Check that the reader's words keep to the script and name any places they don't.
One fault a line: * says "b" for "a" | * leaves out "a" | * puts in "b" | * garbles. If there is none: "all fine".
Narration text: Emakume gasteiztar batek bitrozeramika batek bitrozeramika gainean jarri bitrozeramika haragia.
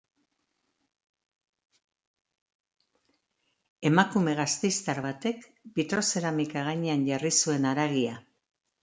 * leaves out "batek bitrozeramika"
* says "zuen" for "bitrozeramika"